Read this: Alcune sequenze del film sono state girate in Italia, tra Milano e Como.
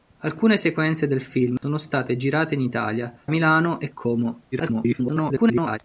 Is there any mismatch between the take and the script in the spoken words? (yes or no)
yes